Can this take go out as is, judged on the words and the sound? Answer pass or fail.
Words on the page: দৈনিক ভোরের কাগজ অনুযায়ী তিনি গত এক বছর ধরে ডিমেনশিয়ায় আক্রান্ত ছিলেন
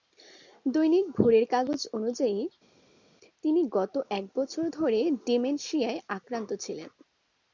pass